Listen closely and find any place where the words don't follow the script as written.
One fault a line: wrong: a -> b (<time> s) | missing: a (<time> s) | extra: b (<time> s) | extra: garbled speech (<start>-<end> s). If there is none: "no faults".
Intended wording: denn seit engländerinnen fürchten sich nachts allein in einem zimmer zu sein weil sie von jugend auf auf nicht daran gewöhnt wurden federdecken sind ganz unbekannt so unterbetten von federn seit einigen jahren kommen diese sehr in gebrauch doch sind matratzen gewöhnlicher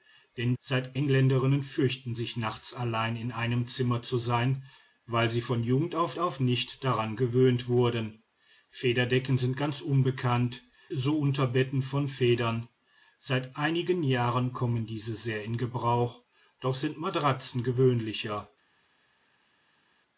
no faults